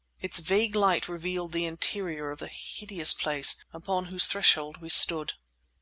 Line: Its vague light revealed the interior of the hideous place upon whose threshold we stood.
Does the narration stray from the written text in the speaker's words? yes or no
no